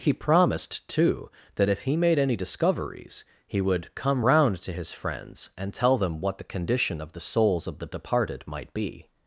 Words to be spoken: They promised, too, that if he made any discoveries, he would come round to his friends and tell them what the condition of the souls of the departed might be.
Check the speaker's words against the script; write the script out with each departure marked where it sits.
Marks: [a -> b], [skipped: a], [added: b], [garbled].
[They -> He] promised, too, that if he made any discoveries, he would come round to his friends and tell them what the condition of the souls of the departed might be.